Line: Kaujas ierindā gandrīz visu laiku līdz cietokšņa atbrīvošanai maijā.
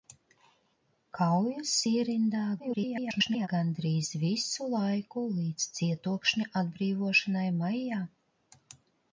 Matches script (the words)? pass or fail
fail